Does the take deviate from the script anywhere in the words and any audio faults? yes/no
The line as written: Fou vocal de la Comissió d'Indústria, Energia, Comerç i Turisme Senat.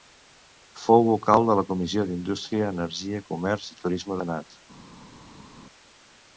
no